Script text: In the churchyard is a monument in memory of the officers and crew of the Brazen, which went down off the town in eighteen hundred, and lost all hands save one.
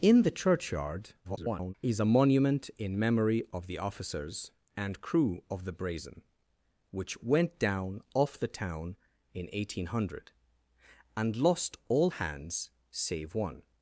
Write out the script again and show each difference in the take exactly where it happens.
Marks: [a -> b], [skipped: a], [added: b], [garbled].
In the churchyard [garbled] is a monument in memory of the officers and crew of the Brazen, which went down off the town in eighteen hundred, and lost all hands save one.